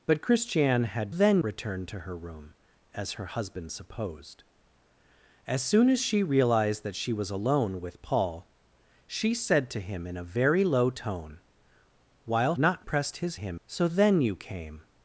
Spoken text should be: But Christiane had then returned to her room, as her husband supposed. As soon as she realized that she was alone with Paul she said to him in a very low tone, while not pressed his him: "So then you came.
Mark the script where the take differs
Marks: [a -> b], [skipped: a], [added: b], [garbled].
But Christiane had then returned to her room, as her husband supposed. As soon as she realized that she was alone with Paul she said to him in a very low tone, while not pressed his him: "So then you came.